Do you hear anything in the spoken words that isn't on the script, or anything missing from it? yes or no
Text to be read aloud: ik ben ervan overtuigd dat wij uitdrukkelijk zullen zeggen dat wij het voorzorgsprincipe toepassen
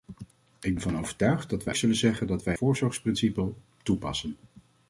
yes